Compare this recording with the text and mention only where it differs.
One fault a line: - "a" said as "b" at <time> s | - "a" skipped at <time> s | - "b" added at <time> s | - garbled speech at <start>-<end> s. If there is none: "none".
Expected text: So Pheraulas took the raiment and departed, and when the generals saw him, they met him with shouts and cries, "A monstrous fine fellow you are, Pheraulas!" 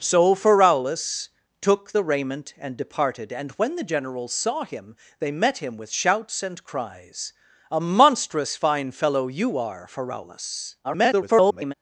- garbled speech at 10.8-11.7 s